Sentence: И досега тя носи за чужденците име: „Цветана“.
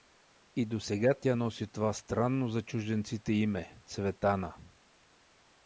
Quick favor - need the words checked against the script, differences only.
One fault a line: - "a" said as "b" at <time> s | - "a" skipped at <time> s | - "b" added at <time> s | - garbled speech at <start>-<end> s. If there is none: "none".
- "това странно" added at 1.7 s